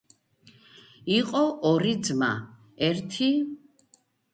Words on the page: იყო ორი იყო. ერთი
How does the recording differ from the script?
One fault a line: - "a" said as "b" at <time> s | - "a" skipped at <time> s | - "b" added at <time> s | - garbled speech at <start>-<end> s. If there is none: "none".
- "იყო" said as "ძმა" at 2.1 s